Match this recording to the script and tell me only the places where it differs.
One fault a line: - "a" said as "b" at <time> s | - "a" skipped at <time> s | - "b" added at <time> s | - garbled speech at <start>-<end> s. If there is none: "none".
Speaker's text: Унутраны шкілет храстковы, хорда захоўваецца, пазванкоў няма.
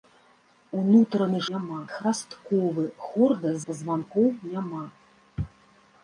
- "шкілет" said as "няма" at 1.5 s
- "захоўваецца" skipped at 3.6 s